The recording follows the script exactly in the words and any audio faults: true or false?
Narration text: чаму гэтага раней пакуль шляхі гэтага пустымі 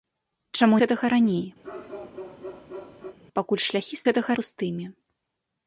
false